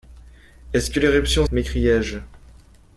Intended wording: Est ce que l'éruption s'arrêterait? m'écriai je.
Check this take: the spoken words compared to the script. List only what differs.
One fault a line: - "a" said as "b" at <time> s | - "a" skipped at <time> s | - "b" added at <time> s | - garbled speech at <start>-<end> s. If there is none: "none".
- "s'arrêterait" skipped at 1.4 s